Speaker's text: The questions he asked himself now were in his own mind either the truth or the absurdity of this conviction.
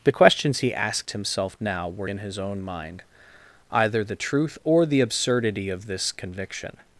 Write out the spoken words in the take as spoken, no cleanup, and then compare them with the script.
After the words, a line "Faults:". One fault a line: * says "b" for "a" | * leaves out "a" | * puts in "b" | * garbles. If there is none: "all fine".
The questions he asked himself now were in his own mind either the truth or the absurdity of this conviction.
Faults:
all fine